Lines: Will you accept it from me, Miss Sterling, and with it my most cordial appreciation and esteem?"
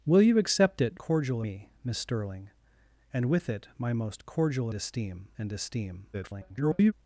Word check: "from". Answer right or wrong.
wrong